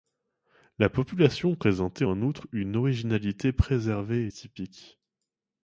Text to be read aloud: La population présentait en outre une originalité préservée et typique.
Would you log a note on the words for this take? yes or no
no